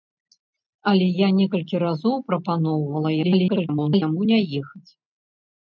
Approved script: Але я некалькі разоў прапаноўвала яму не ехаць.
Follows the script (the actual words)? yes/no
no